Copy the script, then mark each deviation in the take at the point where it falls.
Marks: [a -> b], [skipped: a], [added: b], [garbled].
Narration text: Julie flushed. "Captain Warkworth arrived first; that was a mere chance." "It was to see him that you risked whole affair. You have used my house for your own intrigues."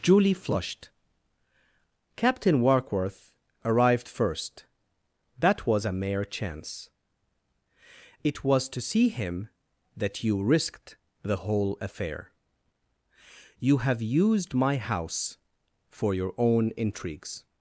Julie flushed. "Captain Warkworth arrived first; that was a mere chance." "It was to see him that you risked [added: the] whole affair. You have used my house for your own intrigues."